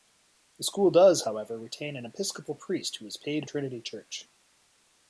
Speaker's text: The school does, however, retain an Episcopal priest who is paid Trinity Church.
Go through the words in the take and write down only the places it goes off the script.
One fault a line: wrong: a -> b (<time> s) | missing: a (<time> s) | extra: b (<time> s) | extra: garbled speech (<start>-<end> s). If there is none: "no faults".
no faults